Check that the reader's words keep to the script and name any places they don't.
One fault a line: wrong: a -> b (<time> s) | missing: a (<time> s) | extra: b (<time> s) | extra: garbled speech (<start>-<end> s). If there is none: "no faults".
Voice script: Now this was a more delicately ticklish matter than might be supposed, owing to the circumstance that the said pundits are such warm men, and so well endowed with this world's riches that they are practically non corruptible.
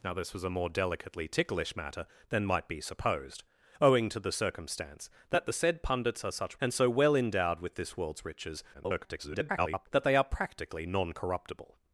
missing: warm men (6.6 s)
extra: garbled speech (8.7-9.9 s)